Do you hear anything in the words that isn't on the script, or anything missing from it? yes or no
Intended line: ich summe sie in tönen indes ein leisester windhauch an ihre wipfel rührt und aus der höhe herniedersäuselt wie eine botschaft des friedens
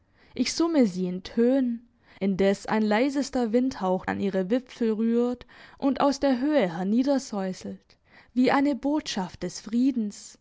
no